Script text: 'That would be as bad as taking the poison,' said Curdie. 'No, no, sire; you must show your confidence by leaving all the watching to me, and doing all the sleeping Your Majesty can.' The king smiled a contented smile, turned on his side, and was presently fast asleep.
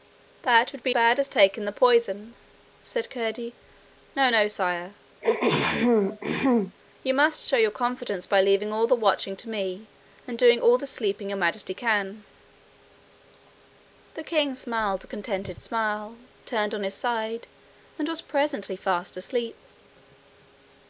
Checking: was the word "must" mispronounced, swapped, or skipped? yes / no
no